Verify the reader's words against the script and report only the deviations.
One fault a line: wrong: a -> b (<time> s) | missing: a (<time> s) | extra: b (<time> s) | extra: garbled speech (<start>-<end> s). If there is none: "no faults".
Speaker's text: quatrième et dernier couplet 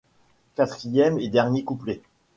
no faults